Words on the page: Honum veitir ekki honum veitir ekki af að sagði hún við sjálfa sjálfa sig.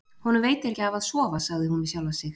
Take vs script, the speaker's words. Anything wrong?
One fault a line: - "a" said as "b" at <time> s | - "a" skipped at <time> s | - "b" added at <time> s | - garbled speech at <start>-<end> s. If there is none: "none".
- "honum veitir ekki" skipped at 0.8 s
- "sofa" added at 1.1 s
- "sjálfa" skipped at 2.2 s